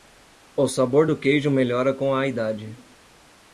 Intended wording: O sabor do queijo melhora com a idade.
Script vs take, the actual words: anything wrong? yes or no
no